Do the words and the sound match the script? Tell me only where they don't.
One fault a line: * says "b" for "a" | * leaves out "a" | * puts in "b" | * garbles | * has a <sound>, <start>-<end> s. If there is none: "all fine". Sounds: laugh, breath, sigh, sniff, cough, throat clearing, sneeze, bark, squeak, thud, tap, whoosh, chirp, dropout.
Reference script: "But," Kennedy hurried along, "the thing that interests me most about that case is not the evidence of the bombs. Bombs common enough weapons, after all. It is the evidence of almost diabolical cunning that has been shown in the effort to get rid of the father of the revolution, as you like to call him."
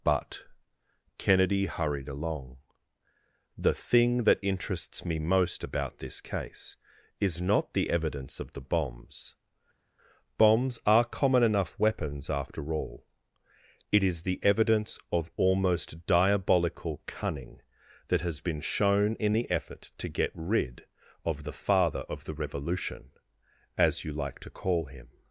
* says "this" for "that"
* puts in "are"